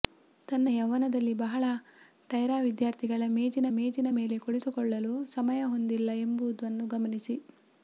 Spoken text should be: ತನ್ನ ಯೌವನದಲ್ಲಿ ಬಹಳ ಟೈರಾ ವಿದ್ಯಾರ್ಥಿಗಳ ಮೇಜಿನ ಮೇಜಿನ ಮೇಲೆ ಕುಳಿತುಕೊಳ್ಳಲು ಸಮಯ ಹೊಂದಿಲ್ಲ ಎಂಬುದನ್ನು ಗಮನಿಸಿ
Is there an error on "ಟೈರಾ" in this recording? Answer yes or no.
no